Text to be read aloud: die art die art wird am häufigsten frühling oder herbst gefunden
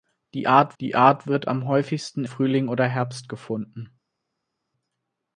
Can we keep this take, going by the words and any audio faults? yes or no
yes